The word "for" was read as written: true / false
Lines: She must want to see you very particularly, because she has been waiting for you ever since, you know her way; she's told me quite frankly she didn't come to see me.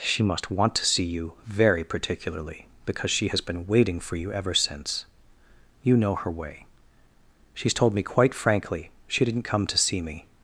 true